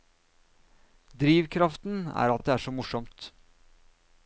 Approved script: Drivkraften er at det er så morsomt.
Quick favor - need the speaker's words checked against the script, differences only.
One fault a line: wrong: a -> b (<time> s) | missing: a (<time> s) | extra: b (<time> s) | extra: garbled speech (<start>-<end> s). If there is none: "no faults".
extra: at (2.4 s)